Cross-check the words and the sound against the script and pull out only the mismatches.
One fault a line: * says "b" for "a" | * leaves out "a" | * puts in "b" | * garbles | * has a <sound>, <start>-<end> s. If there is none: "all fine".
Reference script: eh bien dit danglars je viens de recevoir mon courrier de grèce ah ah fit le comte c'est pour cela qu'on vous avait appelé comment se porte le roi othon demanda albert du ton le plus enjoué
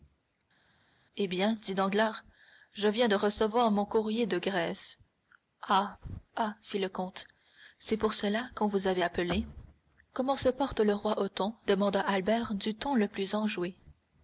all fine